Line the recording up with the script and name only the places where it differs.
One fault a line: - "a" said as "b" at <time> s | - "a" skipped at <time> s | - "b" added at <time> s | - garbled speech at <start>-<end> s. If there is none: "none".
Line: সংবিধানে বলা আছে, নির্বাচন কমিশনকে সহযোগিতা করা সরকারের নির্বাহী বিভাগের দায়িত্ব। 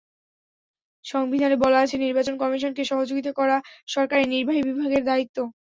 none